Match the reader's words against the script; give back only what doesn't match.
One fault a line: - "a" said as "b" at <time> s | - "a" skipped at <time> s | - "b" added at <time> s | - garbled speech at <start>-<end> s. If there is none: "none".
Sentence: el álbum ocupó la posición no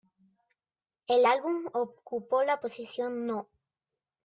none